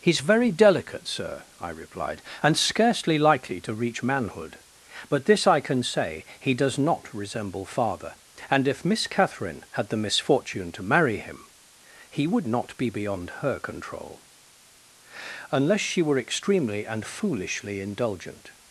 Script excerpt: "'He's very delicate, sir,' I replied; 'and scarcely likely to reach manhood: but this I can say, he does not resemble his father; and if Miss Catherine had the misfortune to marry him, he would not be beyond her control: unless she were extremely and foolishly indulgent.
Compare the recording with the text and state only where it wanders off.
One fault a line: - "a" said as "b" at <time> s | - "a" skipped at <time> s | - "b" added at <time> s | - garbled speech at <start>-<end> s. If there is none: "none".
- "his" skipped at 7.6 s